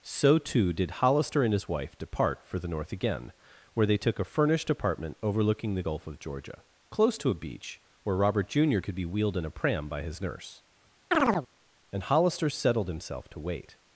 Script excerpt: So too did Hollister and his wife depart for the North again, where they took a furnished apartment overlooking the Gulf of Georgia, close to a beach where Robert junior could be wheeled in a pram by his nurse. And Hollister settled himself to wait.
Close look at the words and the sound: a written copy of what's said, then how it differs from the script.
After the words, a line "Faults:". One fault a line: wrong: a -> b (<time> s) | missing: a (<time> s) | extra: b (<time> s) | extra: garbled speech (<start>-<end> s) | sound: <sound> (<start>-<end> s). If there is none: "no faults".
So too did Hollister and his wife depart for the North again, where they took a furnished apartment overlooking the Gulf of Georgia, close to a beach where Robert junior could be wheeled in a pram by his nurse. And Hollister settled himself to wait.
Faults:
sound: chirp (11.1-11.5 s)